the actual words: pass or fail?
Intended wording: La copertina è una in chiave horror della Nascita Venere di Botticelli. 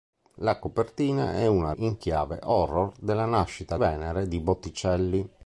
pass